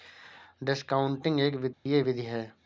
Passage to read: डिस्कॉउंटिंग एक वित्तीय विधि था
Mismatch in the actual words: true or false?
true